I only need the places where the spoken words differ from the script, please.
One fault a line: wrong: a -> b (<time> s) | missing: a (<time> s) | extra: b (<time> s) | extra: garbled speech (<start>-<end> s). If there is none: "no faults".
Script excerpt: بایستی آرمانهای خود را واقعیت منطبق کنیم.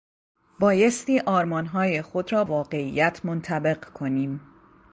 no faults